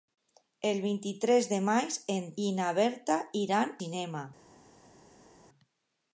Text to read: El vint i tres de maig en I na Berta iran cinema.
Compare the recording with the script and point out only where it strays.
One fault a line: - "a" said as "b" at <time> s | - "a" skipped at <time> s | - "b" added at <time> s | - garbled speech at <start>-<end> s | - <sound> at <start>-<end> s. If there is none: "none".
none